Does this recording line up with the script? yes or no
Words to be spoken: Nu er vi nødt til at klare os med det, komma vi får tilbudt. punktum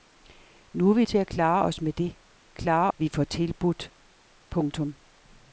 no